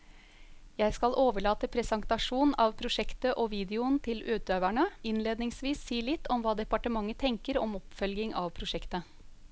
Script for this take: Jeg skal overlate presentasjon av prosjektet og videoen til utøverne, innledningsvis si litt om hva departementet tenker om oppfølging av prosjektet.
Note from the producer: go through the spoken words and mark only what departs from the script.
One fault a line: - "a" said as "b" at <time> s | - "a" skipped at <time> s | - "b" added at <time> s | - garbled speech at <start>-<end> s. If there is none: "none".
none